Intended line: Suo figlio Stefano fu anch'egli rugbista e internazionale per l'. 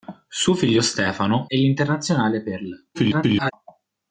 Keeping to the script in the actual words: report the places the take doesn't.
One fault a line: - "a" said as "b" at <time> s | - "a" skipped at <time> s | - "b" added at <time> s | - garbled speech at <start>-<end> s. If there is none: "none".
- "fu anch'egli rugbista" skipped at 1.5 s
- garbled speech at 2.9-3.5 s